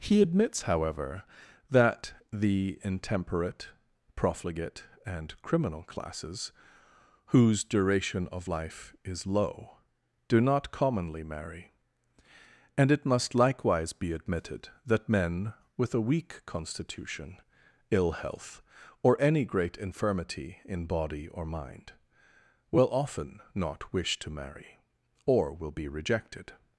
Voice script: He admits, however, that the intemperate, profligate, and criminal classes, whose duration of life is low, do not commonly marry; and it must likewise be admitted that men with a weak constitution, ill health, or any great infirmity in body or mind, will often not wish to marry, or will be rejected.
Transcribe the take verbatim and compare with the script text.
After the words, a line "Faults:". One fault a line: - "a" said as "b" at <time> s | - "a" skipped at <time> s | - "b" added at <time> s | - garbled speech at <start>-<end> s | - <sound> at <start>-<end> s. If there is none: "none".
He admits, however, that the intemperate, profligate, and criminal classes, whose duration of life is low, do not commonly marry; and it must likewise be admitted that men with a weak constitution, ill health, or any great infirmity in body or mind, will often not wish to marry, or will be rejected.
Faults:
none